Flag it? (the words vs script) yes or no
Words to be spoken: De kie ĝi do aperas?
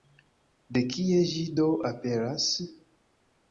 no